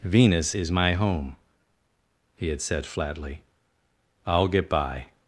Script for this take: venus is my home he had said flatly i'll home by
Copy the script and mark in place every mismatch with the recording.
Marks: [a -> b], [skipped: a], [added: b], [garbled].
venus is my home he had said flatly i'll [home -> get] by